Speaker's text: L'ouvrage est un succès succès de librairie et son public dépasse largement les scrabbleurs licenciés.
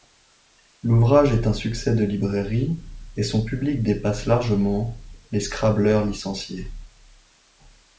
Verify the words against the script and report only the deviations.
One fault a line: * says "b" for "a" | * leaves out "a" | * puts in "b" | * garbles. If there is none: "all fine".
* leaves out "succès"